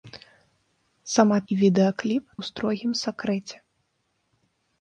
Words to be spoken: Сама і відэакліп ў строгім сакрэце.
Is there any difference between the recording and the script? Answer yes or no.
no